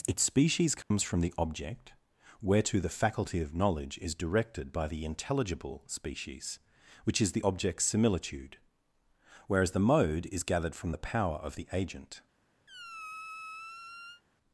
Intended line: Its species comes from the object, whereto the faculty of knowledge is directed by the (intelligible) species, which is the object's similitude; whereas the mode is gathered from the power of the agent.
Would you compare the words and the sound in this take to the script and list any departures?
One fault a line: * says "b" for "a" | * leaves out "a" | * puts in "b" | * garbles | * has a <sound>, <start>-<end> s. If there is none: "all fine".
* has a dropout, 0.8-0.9 s
* has a squeak, 12.7-14.2 s